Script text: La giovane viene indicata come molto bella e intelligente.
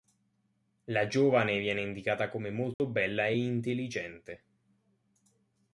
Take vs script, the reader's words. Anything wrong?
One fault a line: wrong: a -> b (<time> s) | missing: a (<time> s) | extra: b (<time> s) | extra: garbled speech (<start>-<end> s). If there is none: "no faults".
no faults